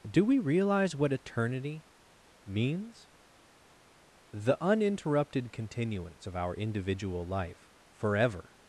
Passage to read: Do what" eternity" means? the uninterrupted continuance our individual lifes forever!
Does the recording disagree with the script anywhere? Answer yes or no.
yes